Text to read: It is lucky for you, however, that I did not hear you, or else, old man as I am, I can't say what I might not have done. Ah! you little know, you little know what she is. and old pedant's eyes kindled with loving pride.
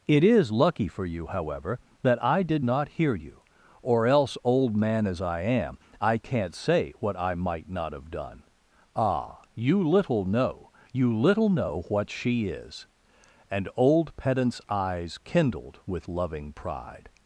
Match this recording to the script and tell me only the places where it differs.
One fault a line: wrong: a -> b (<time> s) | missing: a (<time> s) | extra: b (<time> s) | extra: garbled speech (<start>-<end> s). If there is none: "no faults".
no faults